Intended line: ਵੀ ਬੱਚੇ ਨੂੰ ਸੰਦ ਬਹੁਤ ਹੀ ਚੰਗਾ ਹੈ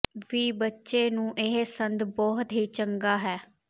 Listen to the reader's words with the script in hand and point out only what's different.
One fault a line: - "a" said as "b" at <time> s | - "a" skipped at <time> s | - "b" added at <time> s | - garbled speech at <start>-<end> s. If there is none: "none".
- "ਇਹ" added at 1.4 s